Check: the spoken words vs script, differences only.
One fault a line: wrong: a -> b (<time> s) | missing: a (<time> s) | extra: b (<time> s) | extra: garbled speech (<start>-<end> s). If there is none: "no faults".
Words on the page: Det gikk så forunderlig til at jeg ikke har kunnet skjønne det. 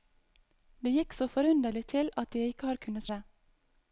missing: skjønne (3.1 s)